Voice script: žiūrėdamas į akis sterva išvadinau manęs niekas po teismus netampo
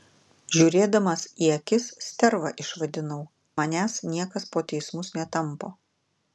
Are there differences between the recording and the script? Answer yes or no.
no